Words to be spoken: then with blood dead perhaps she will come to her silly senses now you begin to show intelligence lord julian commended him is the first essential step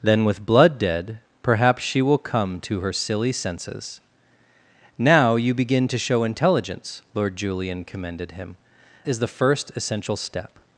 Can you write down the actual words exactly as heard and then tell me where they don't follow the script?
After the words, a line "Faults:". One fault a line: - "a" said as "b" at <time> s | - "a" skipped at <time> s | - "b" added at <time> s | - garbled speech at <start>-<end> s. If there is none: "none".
then with blood dead perhaps she will come to her silly senses now you begin to show intelligence lord julian commended him is the first essential step
Faults:
none